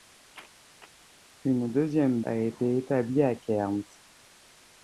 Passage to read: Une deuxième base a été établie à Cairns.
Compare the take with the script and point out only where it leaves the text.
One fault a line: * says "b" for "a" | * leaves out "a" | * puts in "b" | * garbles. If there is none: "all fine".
* leaves out "base"